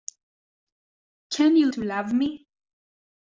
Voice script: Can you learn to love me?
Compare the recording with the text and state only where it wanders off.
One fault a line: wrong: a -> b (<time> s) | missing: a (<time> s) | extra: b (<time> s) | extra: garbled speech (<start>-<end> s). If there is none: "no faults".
missing: learn (1.7 s)